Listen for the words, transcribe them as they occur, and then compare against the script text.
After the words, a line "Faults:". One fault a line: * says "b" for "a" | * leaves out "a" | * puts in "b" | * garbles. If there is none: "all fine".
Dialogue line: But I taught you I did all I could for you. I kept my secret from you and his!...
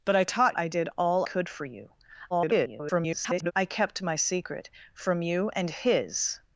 But I taught I did all could for you. [garbled] I kept my secret from you and his!...
Faults:
* leaves out "you"
* leaves out "I"
* garbles